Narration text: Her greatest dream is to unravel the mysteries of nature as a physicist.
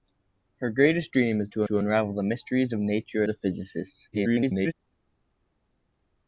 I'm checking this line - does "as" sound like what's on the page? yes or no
no